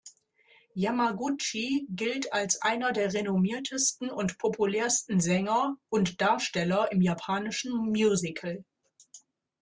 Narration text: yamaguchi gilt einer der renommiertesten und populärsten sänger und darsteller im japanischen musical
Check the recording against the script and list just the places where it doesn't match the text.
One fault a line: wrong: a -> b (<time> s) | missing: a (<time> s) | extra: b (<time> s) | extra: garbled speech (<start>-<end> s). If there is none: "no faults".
extra: als (2.3 s)